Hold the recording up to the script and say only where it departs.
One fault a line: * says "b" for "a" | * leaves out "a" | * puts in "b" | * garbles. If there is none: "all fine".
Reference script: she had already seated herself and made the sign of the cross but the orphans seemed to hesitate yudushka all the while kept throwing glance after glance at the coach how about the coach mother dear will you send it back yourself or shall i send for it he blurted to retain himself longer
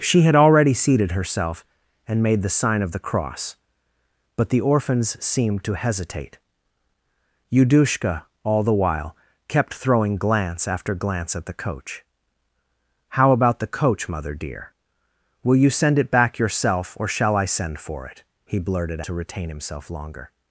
all fine